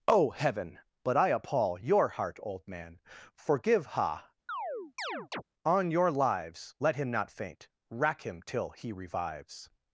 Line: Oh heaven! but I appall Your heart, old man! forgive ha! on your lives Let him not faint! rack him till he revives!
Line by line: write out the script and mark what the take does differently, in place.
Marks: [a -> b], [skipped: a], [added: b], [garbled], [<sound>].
Oh heaven! but I appall Your heart, old man! forgive ha! [chirp] on your lives Let him not faint! rack him till he revives!